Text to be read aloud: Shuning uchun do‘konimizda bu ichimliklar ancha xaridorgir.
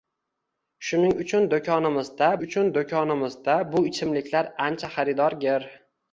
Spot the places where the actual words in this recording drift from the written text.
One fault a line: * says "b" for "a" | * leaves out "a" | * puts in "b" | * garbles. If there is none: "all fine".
* puts in "uchun do‘konimizda"